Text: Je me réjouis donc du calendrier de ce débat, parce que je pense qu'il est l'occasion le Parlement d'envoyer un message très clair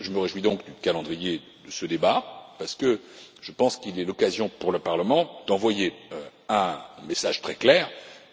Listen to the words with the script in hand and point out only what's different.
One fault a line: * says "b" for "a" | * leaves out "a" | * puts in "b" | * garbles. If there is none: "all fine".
* puts in "pour"